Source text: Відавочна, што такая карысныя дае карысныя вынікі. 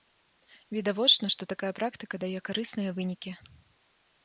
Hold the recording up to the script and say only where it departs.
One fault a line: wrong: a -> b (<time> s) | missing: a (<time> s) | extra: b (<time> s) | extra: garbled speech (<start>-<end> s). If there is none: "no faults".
wrong: карысныя -> практыка (1.8 s)